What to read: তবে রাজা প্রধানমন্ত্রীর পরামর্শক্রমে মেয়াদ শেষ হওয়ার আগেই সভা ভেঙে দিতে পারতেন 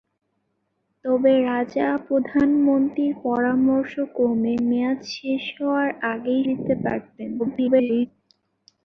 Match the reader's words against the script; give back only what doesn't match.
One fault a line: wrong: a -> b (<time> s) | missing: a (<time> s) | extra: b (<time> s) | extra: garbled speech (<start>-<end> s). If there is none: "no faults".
missing: সভা ভেঙে (6.4 s)
extra: garbled speech (7.4-8.1 s)